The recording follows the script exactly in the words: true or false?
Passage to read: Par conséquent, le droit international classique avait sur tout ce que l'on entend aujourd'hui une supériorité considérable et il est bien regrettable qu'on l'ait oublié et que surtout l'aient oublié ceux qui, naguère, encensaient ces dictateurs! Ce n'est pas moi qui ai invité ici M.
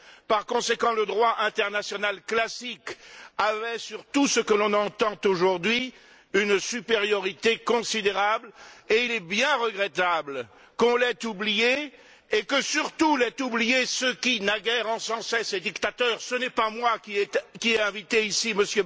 true